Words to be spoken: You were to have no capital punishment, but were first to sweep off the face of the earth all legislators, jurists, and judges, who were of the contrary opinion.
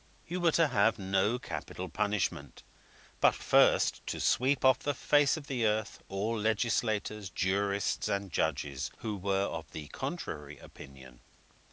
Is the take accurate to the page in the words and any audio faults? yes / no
no